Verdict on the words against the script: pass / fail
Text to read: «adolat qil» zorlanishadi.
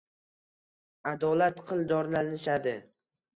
pass